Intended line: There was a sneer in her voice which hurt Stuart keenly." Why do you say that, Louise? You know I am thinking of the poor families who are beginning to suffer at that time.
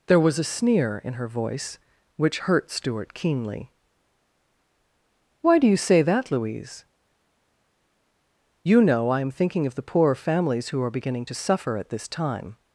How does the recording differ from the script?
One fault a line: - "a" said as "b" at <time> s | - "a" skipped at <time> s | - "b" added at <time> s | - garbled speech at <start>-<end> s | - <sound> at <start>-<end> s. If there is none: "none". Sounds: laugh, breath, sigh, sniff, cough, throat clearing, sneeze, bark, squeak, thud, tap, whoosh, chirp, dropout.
- "that" said as "this" at 11.9 s